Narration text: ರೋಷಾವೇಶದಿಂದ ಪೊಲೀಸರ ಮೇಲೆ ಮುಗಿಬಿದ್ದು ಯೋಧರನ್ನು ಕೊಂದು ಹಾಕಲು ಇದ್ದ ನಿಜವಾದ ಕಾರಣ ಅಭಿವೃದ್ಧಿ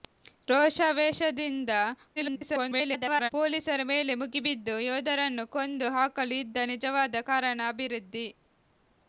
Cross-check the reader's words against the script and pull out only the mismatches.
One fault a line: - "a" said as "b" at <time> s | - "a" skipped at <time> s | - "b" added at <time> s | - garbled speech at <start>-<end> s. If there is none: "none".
- garbled speech at 2.2-3.3 s